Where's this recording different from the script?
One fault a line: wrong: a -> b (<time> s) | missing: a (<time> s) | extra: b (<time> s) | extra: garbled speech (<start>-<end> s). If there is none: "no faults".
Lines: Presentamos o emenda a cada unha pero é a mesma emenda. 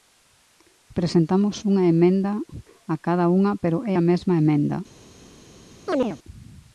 wrong: o -> unha (1.7 s)